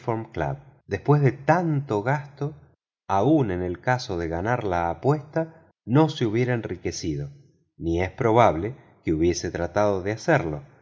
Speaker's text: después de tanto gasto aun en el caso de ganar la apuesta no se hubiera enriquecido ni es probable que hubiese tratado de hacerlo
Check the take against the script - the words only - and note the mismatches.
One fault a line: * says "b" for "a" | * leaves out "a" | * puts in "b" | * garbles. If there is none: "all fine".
all fine